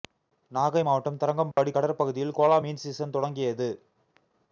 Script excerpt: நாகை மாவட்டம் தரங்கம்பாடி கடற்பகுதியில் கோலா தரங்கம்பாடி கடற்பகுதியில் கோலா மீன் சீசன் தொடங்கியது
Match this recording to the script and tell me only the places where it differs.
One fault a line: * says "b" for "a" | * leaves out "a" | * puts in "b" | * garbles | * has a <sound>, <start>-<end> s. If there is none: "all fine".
* has a dropout, 1.5-1.6 s
* leaves out "தரங்கம்பாடி கடற்பகுதியில் கோலா"